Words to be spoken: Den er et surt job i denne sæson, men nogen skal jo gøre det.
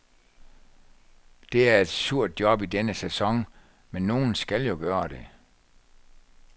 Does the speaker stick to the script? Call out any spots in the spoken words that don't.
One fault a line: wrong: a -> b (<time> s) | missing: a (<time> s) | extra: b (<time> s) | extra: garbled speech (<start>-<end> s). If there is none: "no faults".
wrong: Den -> Det (1.5 s)